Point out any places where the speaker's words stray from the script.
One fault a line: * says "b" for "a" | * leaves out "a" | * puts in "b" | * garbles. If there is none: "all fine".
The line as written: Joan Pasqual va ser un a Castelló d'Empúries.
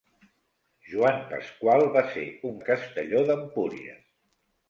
all fine